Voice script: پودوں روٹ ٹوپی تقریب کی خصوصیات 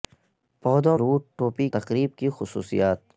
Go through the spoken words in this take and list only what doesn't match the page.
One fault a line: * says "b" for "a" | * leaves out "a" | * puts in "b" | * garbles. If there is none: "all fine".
all fine